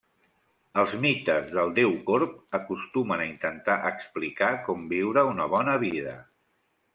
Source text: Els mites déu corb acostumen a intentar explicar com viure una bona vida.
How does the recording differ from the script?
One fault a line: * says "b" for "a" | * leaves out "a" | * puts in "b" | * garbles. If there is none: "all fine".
* puts in "del"